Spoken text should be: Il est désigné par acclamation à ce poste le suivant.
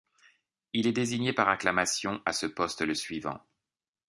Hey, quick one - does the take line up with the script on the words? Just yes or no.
yes